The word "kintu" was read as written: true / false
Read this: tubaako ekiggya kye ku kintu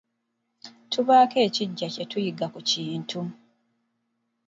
true